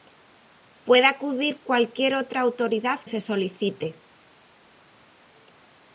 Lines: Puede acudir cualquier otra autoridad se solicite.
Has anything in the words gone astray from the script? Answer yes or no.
no